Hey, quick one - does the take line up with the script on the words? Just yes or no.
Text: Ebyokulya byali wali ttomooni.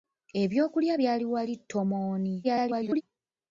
no